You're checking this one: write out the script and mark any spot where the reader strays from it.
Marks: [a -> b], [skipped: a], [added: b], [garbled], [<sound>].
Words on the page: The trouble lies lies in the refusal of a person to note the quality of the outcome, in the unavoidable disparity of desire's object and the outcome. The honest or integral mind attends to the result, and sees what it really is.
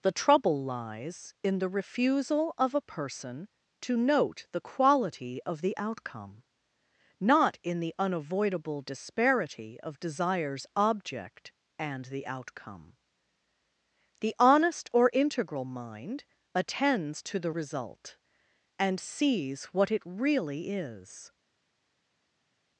The trouble lies [skipped: lies] in the refusal of a person to note the quality of the outcome, [added: not] in the unavoidable disparity of desire's object and the outcome. The honest or integral mind attends to the result, and sees what it really is.